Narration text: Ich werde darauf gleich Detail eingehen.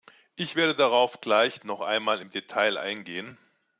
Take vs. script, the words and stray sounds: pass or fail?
fail